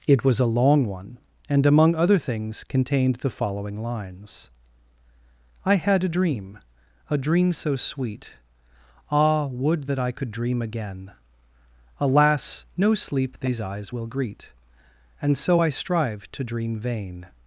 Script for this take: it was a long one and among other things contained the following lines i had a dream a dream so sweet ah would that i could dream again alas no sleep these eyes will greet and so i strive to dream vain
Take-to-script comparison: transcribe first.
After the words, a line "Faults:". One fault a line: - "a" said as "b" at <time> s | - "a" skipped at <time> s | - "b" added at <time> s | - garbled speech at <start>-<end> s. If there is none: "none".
it was a long one and among other things contained the following lines i had a dream a dream so sweet ah would that i could dream again alas no sleep these eyes will greet and so i strive to dream vain
Faults:
none